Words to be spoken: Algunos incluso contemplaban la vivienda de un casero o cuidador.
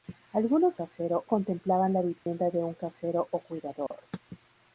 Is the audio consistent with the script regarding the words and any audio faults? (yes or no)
no